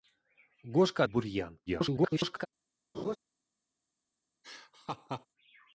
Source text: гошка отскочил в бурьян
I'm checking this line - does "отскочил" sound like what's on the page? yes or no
no